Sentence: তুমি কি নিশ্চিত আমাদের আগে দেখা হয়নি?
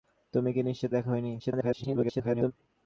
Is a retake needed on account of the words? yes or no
yes